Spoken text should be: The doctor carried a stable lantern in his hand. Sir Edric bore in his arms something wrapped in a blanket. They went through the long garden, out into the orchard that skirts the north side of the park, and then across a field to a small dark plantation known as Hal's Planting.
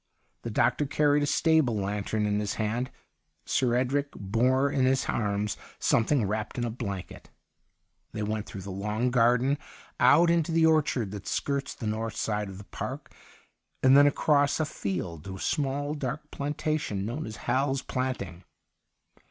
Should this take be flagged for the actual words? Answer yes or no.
no